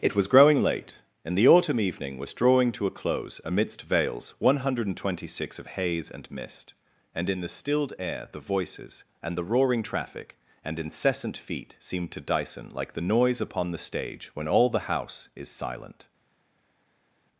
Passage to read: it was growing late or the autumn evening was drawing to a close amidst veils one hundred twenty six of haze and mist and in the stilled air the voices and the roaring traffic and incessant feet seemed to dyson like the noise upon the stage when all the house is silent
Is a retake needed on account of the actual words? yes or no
yes